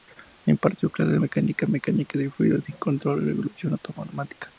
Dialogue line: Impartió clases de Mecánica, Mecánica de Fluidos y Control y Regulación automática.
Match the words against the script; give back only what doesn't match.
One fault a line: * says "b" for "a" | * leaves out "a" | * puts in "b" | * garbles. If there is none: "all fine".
all fine